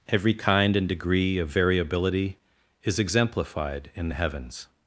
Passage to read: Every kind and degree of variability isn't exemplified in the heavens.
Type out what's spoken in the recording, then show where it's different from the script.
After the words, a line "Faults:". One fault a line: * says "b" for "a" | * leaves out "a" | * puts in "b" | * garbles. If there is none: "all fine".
Every kind and degree of variability is exemplified in the heavens.
Faults:
* says "is" for "isn't"